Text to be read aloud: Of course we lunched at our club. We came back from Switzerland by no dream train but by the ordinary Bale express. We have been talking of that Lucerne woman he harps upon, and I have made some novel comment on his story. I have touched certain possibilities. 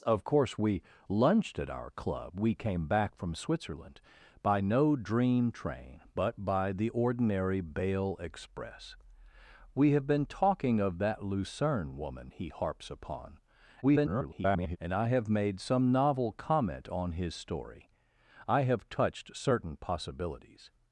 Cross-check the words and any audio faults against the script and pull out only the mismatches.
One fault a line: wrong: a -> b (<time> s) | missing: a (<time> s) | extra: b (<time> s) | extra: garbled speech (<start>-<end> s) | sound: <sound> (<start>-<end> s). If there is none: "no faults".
extra: garbled speech (13.8-14.8 s)